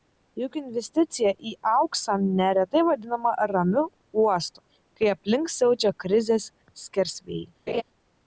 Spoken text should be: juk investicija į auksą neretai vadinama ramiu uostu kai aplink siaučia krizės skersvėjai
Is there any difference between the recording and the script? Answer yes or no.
no